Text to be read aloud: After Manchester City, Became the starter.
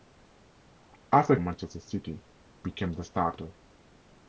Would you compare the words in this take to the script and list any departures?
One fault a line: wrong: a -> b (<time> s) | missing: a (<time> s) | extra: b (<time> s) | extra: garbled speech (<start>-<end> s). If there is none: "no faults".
no faults